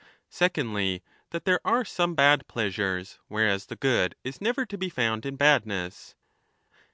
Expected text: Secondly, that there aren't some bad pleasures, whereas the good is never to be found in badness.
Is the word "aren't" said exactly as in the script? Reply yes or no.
no